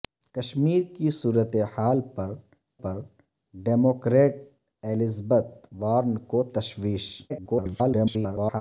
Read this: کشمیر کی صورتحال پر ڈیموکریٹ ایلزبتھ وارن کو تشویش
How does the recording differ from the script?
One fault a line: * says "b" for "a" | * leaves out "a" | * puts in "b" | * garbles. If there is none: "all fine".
* puts in "پر"
* garbles